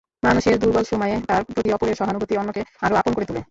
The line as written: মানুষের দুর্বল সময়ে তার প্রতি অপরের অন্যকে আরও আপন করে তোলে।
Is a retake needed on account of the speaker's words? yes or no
yes